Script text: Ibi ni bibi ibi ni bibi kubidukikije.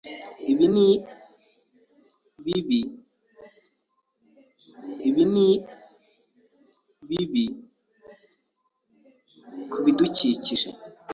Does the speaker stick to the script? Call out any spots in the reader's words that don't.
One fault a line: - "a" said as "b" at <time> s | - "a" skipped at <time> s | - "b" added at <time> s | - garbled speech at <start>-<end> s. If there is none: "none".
none